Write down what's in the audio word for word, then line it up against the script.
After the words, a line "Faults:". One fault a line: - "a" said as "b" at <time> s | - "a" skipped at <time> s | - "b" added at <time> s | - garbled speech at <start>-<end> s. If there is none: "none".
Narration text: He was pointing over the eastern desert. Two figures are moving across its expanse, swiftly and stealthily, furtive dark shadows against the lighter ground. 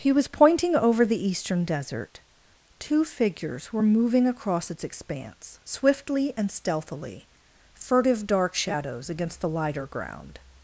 He was pointing over the eastern desert. Two figures were moving across its expanse, swiftly and stealthily, furtive dark shadows against the lighter ground.
Faults:
- "are" said as "were" at 3.7 s